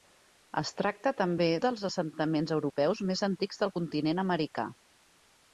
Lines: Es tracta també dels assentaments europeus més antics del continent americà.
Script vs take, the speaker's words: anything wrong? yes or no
no